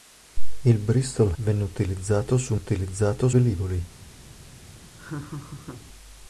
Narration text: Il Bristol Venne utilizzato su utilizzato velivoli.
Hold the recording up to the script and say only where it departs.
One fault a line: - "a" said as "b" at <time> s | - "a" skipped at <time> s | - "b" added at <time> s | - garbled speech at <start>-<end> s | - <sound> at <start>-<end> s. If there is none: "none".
- laugh at 5.0-5.9 s